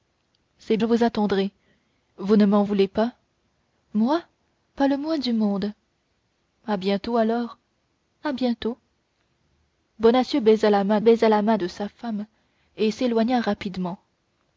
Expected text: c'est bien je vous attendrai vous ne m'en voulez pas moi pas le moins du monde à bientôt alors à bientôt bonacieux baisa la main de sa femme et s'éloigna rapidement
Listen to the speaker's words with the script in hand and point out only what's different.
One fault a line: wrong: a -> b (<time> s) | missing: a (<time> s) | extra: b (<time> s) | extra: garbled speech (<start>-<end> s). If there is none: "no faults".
missing: bien (0.8 s)
extra: baisa la main (11.0 s)